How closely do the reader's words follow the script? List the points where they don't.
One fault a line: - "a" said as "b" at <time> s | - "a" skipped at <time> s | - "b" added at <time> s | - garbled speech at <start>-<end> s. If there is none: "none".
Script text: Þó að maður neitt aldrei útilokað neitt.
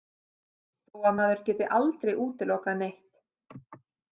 - "neitt" said as "geti" at 1.5 s